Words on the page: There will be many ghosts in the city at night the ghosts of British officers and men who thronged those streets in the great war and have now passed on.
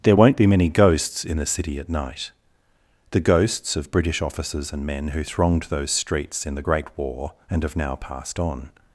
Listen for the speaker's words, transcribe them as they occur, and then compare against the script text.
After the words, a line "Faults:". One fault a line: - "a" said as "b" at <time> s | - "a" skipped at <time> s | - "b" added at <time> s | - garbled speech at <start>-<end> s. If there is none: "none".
There won't be many ghosts in the city at night the ghosts of British officers and men who thronged those streets in the great war and have now passed on.
Faults:
- "will" said as "won't" at 0.1 s